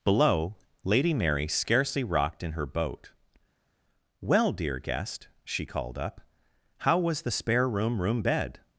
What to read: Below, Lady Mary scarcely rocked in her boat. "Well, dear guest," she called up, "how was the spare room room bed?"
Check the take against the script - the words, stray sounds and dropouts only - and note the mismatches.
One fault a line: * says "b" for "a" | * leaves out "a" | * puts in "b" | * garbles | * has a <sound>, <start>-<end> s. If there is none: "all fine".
all fine